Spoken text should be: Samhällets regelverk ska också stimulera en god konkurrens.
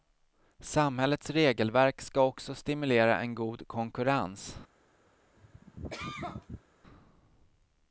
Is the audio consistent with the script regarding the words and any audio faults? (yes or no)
no